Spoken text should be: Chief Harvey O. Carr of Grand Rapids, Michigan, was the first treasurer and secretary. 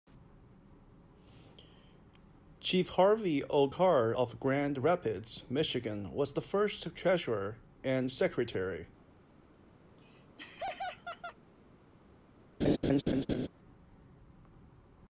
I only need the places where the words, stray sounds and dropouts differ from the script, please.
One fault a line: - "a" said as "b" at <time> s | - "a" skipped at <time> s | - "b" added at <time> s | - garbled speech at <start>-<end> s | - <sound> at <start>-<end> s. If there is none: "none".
- laugh at 9.8-11.4 s
- laugh at 12.6-13.5 s